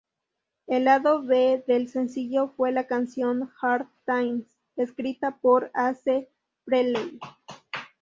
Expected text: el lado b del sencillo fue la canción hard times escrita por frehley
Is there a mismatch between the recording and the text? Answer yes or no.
yes